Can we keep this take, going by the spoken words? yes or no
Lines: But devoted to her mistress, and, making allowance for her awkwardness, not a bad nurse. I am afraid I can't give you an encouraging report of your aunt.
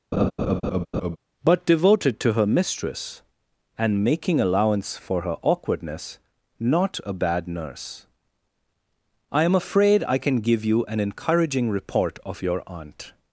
no